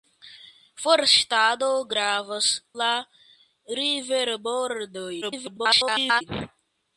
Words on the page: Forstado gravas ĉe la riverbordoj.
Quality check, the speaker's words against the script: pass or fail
fail